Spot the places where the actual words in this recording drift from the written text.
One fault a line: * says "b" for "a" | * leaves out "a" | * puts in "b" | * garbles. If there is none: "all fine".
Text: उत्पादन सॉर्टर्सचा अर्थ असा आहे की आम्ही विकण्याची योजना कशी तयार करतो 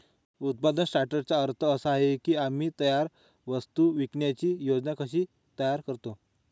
* puts in "तयार वस्तू"